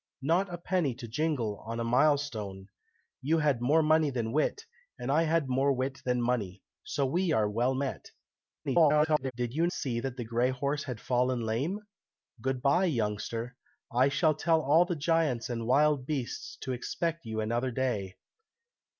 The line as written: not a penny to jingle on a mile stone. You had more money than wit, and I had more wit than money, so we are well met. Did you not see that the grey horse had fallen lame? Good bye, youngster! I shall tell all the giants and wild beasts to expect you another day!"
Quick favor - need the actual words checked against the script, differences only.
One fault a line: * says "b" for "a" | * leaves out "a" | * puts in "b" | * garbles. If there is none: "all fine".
* garbles
* leaves out "not"